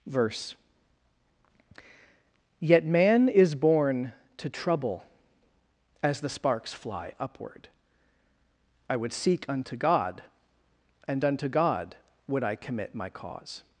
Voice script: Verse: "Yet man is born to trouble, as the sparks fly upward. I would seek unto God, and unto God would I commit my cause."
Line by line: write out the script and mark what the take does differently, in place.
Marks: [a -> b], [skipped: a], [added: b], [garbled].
Verse: "Yet man is born to trouble, as the sparks fly upward. I would seek unto God, and unto God would I commit my cause."